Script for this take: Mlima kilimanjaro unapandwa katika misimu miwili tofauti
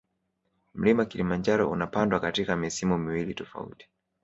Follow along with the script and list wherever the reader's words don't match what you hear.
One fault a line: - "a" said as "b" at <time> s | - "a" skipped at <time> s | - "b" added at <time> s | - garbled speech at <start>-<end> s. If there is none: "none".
none